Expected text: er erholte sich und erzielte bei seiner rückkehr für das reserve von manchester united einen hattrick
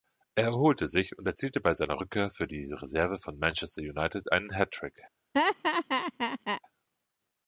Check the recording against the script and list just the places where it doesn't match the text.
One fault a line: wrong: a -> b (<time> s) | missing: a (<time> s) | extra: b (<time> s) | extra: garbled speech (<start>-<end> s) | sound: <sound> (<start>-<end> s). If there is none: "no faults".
wrong: das -> die (2.5 s)
sound: laugh (5.3-6.6 s)